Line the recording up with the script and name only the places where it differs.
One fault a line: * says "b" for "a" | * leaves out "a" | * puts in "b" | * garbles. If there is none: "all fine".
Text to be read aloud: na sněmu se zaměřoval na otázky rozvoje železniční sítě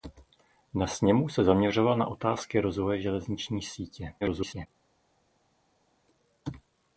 * garbles